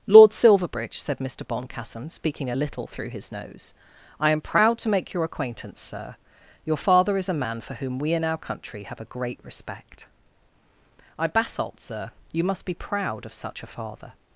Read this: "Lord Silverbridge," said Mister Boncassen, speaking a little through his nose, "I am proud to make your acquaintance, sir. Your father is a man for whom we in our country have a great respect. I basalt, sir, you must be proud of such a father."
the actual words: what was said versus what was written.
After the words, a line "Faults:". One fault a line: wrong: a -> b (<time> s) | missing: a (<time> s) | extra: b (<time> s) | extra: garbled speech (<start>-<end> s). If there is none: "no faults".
"Lord Silverbridge," said Mister Boncassen, speaking a little through his nose, "I am proud to make your acquaintance, sir. Your father is a man for whom we in our country have a great respect. I basalt, sir, you must be proud of such a father."
Faults:
no faults